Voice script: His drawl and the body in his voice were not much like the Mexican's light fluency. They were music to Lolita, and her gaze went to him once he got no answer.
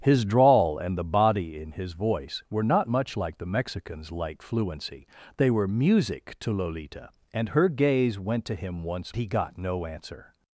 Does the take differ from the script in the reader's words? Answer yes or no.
no